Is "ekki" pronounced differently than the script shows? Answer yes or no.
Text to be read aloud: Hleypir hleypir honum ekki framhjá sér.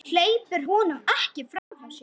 no